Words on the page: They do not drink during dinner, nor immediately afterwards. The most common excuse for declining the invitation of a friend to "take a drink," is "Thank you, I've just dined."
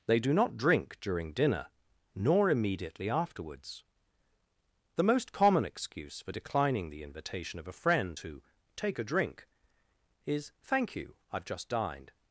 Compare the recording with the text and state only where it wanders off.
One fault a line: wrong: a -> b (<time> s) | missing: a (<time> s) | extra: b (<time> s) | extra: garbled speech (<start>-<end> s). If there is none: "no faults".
no faults